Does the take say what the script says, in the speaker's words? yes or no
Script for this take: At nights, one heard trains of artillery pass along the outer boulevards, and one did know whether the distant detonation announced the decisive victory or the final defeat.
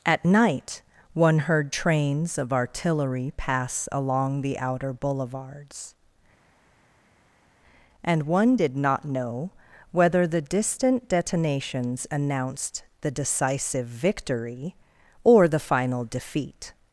no